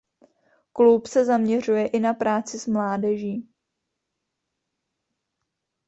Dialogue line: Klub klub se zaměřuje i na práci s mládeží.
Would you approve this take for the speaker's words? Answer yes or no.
no